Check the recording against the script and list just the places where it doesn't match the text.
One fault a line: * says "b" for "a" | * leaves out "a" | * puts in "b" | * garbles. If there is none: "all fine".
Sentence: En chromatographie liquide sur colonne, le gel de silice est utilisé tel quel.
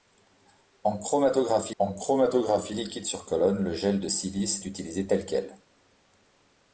* puts in "en chromatographie"
* leaves out "est"